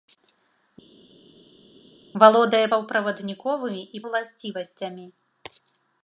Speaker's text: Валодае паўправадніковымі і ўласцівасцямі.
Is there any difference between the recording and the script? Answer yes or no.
no